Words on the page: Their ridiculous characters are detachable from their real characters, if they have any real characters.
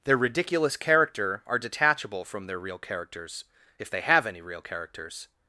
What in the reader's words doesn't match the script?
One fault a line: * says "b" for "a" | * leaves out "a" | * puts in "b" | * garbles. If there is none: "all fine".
* says "character" for "characters"